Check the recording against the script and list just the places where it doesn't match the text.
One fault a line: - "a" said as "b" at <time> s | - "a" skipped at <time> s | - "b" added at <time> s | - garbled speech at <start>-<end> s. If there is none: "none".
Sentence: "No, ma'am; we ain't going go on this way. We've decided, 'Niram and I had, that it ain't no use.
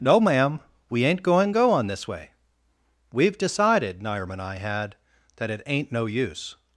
none